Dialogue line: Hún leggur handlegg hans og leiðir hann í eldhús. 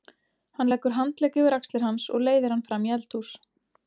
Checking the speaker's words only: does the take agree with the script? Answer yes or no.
no